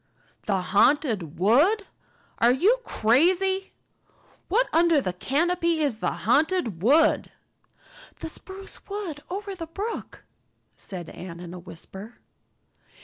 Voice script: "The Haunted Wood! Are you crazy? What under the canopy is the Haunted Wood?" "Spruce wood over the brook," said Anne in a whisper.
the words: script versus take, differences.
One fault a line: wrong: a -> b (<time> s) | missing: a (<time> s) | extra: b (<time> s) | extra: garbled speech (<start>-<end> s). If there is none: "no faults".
extra: The (8.2 s)